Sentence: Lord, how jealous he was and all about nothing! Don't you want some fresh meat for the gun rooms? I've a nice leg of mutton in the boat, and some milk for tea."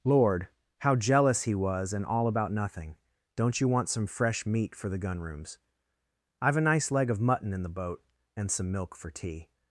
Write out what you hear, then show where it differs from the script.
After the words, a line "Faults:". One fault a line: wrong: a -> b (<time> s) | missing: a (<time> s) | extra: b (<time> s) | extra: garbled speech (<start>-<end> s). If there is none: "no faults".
Lord, how jealous he was and all about nothing! Don't you want some fresh meat for the gun rooms? I've a nice leg of mutton in the boat, and some milk for tea."
Faults:
no faults